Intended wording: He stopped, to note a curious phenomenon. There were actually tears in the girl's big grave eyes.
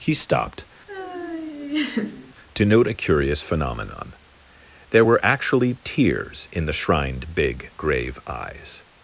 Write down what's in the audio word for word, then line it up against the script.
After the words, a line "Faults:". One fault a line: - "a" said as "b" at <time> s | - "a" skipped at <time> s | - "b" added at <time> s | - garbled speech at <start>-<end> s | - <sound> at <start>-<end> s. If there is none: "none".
He stopped, to note a curious phenomenon. There were actually tears in the shrined big grave eyes.
Faults:
- laugh at 0.9-2.3 s
- "girl's" said as "shrined" at 6.7 s